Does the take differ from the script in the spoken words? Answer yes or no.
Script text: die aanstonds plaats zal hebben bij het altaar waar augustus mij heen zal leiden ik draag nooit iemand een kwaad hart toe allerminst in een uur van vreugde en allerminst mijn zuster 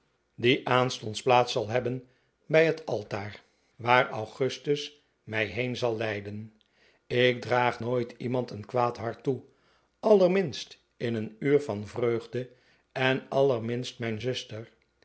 no